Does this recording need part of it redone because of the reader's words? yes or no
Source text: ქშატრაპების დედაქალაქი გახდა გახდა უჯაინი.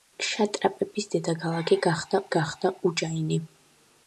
no